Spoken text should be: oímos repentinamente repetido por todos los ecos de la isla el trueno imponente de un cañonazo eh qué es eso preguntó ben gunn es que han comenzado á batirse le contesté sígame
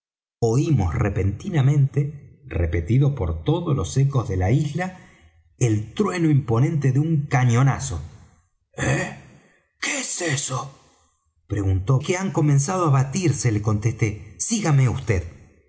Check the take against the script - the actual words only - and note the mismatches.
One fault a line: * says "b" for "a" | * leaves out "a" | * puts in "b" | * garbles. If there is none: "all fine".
* leaves out "ben gunn es"